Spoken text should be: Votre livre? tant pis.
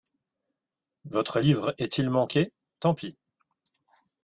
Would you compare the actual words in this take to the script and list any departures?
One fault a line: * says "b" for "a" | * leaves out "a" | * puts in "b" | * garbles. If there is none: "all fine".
* puts in "est il manqué"